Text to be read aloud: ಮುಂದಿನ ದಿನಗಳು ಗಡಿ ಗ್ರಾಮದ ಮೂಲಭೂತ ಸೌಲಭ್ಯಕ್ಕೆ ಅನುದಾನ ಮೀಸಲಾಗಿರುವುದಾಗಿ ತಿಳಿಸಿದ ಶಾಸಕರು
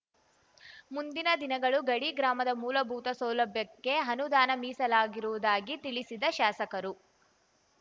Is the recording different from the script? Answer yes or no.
no